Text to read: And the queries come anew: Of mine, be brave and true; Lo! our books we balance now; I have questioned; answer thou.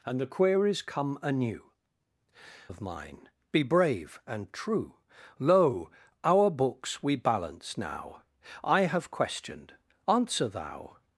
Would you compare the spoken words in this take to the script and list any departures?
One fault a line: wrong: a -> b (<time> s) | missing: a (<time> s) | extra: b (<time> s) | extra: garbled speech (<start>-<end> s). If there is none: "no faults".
no faults